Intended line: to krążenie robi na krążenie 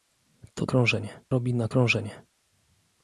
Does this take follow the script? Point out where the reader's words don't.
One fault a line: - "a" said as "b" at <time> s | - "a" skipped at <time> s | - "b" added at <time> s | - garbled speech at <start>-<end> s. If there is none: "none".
none